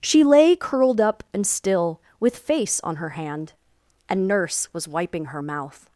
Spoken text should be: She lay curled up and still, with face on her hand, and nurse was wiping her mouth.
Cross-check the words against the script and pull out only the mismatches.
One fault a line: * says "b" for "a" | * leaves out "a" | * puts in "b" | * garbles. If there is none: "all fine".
all fine